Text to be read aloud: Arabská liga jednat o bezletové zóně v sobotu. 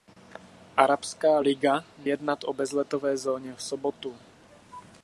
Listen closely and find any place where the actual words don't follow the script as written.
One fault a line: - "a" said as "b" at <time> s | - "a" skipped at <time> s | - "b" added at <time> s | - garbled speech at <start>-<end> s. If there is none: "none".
none